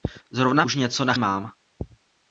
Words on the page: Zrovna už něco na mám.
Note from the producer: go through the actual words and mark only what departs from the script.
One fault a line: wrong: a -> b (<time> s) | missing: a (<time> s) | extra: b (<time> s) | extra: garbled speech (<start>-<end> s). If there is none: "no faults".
no faults